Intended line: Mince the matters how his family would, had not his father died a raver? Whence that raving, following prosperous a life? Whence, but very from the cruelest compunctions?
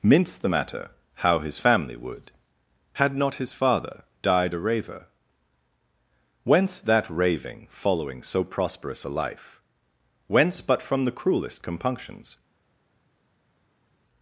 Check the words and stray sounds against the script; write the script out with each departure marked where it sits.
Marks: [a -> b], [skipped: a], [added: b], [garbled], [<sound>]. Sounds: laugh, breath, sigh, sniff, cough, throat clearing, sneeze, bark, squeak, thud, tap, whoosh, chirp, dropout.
Mince the [matters -> matter] how his family would, had not his father died a raver? Whence that raving, following [added: so] prosperous a life? Whence, but [skipped: very] from the cruelest compunctions?